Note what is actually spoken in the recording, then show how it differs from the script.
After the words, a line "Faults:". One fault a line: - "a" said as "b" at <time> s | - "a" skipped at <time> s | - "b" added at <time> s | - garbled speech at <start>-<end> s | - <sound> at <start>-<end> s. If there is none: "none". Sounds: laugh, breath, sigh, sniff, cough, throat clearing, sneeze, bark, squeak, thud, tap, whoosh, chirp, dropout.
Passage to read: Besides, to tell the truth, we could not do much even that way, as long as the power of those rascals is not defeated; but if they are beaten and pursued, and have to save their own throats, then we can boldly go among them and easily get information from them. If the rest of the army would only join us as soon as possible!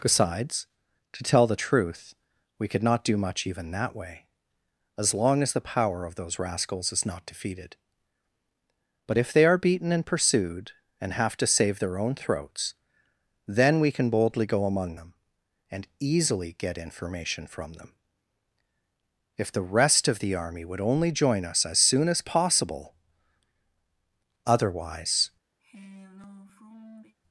Besides, to tell the truth, we could not do much even that way, as long as the power of those rascals is not defeated; but if they are beaten and pursued, and have to save their own throats, then we can boldly go among them and easily get information from them. If the rest of the army would only join us as soon as possible! Otherwise
Faults:
- "Otherwise" added at 24.4 s
- sigh at 25.6-27.2 s